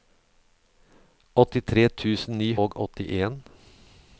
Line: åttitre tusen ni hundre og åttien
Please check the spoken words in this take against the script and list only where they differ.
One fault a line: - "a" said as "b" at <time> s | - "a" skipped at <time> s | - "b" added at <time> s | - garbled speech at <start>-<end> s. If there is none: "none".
- "hundre" skipped at 2.5 s